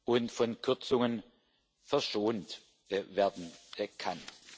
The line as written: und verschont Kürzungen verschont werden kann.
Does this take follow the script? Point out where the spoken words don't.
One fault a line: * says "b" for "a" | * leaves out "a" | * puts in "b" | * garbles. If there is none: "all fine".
* says "von" for "verschont"